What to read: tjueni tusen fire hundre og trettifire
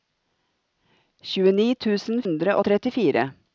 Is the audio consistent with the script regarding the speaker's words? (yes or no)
no